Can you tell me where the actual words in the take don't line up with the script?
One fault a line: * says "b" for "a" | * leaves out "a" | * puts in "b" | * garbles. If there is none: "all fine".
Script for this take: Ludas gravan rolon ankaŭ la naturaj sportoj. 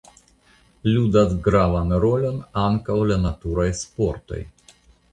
all fine